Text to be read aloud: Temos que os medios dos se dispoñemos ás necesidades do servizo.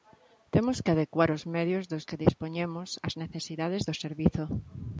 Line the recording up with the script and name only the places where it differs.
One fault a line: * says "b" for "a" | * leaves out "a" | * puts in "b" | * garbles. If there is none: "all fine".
* puts in "adecuar"
* says "que" for "se"